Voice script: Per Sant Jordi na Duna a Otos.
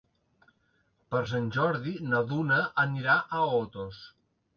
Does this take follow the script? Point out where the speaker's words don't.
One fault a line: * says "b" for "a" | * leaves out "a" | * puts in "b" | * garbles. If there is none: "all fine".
* puts in "anirà"